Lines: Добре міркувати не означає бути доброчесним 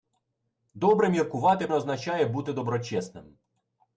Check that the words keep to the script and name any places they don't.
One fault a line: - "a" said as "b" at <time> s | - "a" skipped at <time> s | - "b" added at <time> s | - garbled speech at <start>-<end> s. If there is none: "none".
none